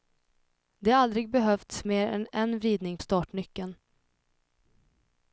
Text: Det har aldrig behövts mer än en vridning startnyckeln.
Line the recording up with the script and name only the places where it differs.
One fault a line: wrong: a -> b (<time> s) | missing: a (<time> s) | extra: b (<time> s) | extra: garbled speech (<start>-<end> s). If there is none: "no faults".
no faults